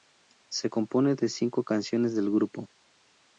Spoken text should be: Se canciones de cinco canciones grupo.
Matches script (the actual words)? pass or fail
fail